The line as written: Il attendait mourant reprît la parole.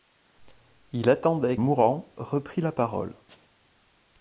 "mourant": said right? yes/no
yes